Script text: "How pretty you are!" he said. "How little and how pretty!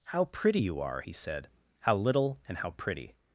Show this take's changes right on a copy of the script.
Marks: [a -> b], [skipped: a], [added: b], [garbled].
"How pretty you are!" he said. "How little and how pretty!